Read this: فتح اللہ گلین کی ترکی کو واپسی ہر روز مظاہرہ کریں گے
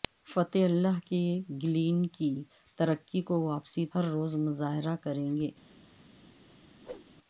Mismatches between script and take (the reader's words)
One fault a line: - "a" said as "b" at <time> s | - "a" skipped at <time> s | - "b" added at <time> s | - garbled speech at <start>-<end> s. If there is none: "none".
none